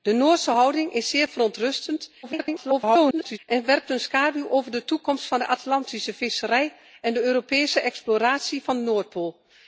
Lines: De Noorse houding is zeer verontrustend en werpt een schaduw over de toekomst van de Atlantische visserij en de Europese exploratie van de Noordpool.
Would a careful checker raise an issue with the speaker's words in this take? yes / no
yes